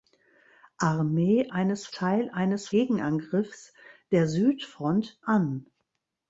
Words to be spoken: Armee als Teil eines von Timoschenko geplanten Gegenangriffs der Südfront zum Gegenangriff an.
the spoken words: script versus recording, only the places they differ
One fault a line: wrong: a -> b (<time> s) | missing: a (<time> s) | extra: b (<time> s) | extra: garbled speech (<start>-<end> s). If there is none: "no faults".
wrong: als -> eines (1.5 s)
missing: von Timoschenko geplanten (2.7 s)
missing: zum Gegenangriff (5.2 s)